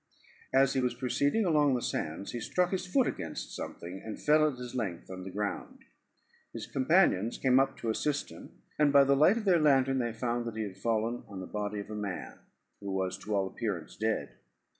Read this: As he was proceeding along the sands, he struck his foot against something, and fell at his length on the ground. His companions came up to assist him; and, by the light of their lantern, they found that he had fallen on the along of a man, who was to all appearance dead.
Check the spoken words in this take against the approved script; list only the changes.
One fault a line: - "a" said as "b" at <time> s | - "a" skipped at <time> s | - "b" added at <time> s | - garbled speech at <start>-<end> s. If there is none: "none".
- "along" said as "body" at 11.5 s